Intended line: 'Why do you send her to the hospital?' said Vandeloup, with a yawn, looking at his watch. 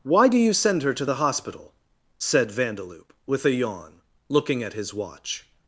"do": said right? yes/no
yes